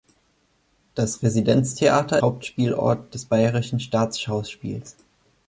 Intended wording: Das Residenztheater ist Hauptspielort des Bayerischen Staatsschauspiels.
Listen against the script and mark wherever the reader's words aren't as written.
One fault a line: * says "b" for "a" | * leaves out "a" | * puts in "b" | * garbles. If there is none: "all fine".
* leaves out "ist"